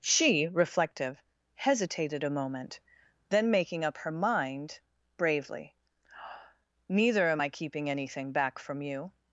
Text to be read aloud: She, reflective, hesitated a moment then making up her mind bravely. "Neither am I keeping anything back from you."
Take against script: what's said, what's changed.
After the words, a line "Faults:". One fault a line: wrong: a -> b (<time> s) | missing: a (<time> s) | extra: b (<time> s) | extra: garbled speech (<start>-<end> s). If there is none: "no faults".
She, reflective, hesitated a moment then making up her mind bravely. "Neither am I keeping anything back from you."
Faults:
no faults